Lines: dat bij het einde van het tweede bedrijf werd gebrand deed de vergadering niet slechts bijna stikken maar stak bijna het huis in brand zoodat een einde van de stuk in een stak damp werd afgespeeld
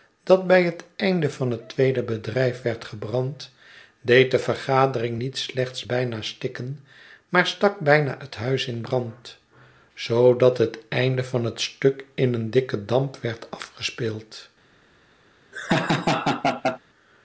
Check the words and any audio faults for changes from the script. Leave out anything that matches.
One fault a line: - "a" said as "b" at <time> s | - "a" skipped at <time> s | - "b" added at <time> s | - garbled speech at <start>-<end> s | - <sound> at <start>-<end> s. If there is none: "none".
- "een" said as "het" at 10.6 s
- "de" said as "het" at 11.4 s
- "stak" said as "dikken" at 12.5 s
- laugh at 15.5-16.8 s